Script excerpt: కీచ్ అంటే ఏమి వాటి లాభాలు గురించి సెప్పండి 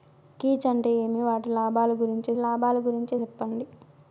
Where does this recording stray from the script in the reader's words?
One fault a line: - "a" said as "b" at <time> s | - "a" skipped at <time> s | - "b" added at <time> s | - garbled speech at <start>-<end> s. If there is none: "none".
- "లాభాలు గురించి" added at 2.4 s